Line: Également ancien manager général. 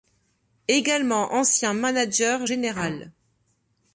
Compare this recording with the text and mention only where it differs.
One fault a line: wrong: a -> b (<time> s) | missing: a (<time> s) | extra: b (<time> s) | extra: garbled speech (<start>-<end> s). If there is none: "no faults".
no faults